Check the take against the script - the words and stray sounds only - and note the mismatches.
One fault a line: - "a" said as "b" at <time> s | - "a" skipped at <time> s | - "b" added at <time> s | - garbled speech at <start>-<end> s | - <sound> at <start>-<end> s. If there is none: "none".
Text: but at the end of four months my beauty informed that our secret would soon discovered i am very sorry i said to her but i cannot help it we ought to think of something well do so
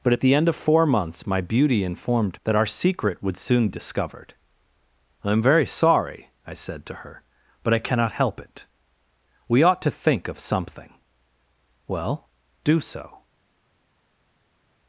none